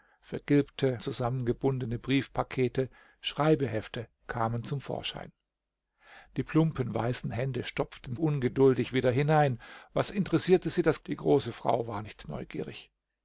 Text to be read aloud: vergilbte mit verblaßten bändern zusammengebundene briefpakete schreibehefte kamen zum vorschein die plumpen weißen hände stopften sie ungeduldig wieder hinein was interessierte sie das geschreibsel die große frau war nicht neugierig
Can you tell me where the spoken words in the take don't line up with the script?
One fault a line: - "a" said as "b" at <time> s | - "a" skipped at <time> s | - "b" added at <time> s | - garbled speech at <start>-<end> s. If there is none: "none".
- "mit verblaßten bändern" skipped at 1.0 s
- "sie" skipped at 8.2 s
- "geschreibsel" skipped at 11.0 s